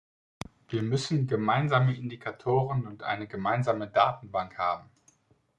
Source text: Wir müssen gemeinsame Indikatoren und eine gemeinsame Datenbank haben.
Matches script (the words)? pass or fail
pass